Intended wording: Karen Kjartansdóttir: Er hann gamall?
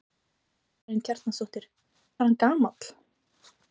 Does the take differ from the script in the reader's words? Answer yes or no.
no